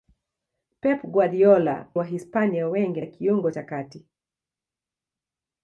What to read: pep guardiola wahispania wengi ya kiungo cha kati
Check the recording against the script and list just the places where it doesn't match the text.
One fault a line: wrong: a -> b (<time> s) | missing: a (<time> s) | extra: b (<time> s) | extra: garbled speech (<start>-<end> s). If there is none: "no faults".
no faults